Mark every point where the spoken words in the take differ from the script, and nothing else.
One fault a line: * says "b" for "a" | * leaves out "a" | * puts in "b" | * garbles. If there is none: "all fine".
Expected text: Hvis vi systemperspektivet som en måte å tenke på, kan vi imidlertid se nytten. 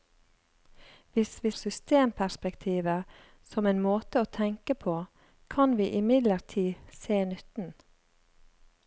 all fine